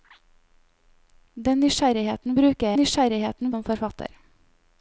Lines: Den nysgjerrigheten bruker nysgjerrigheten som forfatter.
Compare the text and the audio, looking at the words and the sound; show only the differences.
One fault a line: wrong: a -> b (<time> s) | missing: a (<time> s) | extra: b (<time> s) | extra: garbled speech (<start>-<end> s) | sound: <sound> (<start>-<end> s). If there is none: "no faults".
no faults